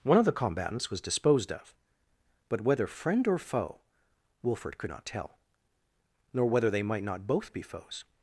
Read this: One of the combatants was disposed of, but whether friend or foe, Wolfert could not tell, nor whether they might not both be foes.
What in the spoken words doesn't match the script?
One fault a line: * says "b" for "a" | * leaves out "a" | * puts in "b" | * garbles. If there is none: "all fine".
all fine